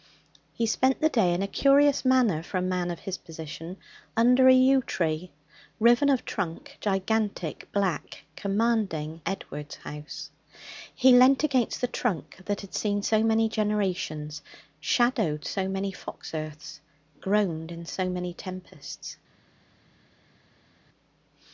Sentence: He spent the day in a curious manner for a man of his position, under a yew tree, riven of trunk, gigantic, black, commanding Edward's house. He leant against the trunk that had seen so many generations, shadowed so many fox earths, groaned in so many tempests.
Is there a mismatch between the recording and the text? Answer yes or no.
no